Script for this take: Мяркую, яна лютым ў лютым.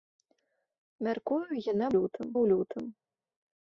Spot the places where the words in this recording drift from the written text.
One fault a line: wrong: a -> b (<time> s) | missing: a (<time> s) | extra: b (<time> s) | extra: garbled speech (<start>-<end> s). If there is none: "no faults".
no faults